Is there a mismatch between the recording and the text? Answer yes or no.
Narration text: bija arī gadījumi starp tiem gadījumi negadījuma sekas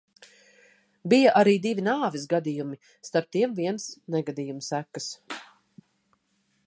yes